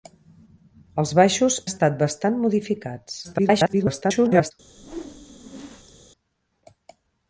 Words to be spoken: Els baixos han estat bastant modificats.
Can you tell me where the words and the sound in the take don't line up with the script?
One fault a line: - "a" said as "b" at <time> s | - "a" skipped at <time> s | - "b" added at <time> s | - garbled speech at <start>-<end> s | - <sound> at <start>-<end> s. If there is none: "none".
- "han" skipped at 1.6 s
- garbled speech at 3.2-4.5 s
- whoosh at 4.7-6.0 s